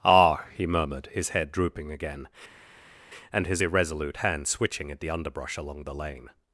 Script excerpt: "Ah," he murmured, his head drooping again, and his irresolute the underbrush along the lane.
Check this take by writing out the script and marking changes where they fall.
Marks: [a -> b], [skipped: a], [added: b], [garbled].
"Ah," he murmured, his head drooping again, and his irresolute [added: hand switching at] the underbrush along the lane.